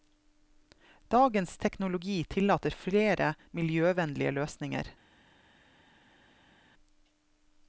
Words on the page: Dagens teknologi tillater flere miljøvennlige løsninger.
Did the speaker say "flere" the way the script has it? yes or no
yes